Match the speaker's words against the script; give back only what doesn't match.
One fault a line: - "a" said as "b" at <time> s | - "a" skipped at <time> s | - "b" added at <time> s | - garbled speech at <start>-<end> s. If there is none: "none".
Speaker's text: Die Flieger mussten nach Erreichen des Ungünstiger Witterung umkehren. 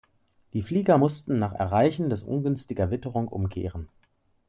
none